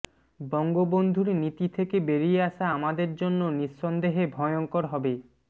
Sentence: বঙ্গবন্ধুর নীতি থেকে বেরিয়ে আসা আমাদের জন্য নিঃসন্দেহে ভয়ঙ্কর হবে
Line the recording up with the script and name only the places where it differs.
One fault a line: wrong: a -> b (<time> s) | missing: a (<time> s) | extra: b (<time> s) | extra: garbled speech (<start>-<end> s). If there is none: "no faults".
no faults